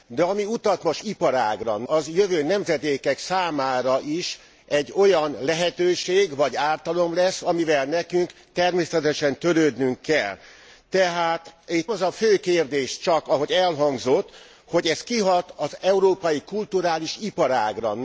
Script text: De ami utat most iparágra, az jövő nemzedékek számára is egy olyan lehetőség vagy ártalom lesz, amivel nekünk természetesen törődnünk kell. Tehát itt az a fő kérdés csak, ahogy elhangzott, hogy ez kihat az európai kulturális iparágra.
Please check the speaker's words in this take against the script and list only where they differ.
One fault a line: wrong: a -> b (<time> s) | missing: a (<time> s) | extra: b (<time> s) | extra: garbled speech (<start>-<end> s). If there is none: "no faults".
no faults